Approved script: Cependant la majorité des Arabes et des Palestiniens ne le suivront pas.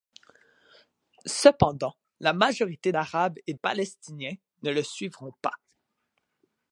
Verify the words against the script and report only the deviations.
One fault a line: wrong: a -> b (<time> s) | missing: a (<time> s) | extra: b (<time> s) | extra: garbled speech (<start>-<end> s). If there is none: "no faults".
missing: des (2.9 s)
missing: des (3.5 s)